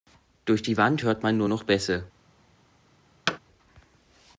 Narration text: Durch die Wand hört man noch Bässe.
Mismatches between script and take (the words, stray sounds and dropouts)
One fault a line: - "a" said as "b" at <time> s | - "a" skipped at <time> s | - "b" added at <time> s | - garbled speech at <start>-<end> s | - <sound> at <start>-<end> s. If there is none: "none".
- "nur" added at 1.4 s
- thud at 3.3-3.4 s